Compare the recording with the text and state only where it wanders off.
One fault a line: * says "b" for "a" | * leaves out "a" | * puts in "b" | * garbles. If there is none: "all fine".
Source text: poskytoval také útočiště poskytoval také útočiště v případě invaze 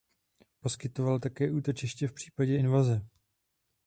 * leaves out "poskytoval také útočiště"